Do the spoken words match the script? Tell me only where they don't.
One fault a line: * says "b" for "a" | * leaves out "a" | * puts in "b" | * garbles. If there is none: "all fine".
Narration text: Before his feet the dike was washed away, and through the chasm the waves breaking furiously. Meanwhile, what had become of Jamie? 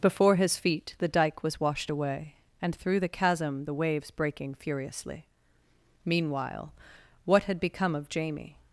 all fine